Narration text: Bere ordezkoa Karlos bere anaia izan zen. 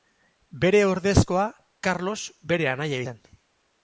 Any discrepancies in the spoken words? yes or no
yes